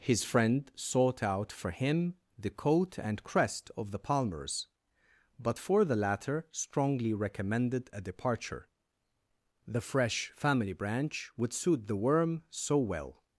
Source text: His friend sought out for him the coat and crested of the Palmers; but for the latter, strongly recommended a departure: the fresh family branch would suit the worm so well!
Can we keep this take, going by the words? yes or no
no